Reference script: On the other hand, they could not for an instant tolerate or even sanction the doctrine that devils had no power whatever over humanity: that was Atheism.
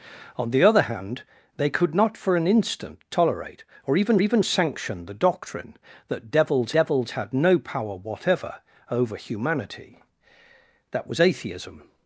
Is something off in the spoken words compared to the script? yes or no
yes